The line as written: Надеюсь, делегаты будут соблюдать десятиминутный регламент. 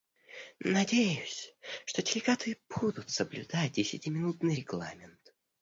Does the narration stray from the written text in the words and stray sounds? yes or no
yes